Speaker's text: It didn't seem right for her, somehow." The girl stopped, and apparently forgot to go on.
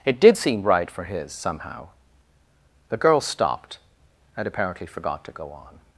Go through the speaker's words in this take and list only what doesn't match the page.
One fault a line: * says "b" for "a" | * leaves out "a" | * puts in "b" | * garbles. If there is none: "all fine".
* says "did" for "didn't"
* says "his" for "her"